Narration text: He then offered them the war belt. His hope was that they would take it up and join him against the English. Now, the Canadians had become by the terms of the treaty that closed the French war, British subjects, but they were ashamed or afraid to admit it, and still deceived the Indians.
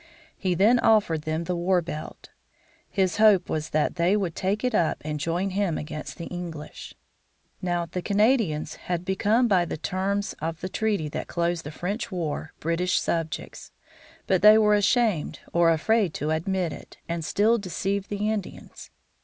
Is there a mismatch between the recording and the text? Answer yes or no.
no